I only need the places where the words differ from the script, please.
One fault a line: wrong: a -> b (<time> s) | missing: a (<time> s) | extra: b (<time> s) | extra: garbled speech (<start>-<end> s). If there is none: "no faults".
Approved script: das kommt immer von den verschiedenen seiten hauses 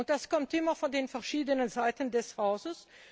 extra: des (2.1 s)